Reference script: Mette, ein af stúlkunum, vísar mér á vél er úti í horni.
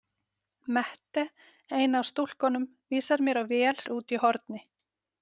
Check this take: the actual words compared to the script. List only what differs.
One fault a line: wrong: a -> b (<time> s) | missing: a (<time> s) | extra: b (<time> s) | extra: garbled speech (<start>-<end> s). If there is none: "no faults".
no faults